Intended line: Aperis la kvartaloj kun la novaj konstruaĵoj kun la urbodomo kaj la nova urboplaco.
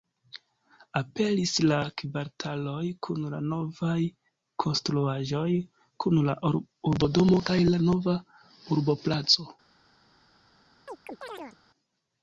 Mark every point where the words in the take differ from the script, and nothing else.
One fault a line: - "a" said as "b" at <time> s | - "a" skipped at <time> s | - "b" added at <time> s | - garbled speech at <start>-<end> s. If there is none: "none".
none